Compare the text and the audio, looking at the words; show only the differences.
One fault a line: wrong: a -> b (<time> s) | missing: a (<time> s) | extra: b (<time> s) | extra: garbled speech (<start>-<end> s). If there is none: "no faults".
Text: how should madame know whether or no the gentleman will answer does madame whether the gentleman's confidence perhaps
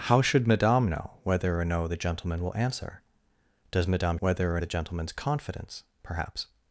no faults